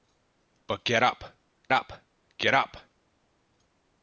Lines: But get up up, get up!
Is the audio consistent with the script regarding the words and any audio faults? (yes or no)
yes